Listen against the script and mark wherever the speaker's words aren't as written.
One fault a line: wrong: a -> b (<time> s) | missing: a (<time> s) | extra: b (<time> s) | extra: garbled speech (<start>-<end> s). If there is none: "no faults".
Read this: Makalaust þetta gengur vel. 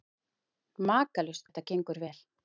no faults